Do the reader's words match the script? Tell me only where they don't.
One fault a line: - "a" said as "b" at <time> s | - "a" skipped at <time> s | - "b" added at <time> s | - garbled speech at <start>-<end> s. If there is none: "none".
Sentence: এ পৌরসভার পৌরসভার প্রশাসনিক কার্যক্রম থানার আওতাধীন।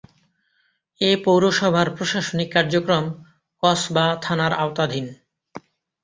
- "পৌরসভার" skipped at 1.9 s
- "কসবা" added at 3.6 s